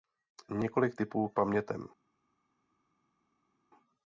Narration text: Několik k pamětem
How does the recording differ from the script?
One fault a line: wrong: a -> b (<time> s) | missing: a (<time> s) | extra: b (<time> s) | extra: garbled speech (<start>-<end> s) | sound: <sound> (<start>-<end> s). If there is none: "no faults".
extra: tipů (1.0 s)